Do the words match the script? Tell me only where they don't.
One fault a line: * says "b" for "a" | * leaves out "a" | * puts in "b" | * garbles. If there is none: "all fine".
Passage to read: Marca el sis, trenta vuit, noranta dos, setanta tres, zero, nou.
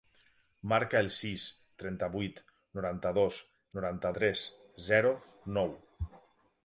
* says "noranta" for "setanta"